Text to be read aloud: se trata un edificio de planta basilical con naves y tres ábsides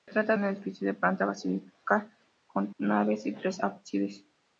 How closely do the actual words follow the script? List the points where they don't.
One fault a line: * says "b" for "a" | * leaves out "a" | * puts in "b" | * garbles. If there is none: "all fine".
all fine